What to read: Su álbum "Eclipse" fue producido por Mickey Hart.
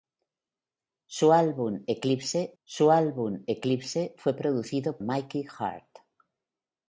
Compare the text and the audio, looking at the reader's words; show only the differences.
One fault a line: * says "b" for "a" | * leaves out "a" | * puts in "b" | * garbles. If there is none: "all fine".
* puts in "su álbum Eclipse"
* leaves out "por"